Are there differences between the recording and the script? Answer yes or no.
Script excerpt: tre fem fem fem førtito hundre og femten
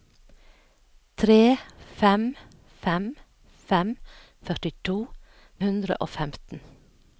no